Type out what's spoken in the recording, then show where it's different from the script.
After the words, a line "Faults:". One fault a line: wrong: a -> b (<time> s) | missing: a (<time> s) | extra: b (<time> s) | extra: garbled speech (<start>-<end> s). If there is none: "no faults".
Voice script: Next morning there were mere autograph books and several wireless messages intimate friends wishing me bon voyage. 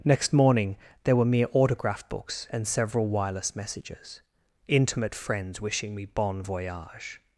Next morning there were mere autograph books and several wireless messages intimate friends wishing me bon voyage.
Faults:
no faults